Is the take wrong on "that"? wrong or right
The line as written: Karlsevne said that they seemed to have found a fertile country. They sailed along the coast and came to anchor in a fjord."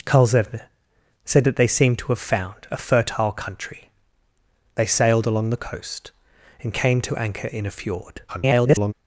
right